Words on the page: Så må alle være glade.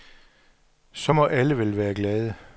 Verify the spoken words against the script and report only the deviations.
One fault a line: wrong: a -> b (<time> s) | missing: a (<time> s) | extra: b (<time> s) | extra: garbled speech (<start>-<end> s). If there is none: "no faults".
extra: vel (1.6 s)